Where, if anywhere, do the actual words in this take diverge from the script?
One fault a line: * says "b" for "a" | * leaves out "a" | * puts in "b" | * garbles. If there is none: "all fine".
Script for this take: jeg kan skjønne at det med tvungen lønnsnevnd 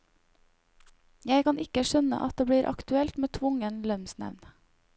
* puts in "ikke"
* puts in "blir aktuelt"